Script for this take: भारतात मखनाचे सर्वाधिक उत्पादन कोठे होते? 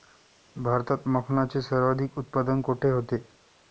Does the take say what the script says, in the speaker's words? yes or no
yes